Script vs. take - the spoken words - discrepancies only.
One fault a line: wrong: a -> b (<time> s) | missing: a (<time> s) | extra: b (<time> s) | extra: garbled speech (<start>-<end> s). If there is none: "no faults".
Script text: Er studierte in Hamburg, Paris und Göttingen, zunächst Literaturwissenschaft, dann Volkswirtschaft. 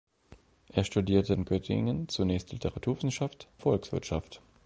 missing: in Hamburg Paris (1.4 s)
missing: dann (3.5 s)